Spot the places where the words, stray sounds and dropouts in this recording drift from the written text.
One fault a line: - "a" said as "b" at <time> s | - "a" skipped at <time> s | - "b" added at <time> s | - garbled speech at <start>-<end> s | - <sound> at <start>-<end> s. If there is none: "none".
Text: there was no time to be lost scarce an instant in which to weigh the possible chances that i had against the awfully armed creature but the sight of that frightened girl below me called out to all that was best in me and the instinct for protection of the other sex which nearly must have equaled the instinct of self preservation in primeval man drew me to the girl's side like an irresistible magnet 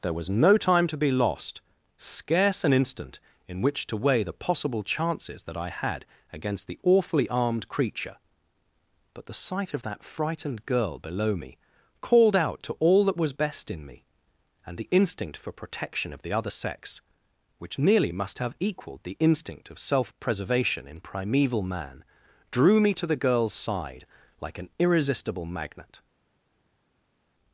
none